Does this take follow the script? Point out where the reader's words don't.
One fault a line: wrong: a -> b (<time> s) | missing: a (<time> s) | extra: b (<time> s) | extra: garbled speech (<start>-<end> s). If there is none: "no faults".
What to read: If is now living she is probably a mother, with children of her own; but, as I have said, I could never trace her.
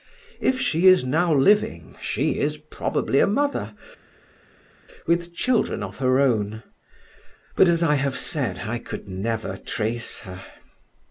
extra: she (0.6 s)